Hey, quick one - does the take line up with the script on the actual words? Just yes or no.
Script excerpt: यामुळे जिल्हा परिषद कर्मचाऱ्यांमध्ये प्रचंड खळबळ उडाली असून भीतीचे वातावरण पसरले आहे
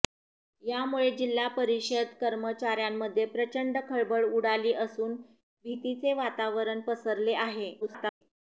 no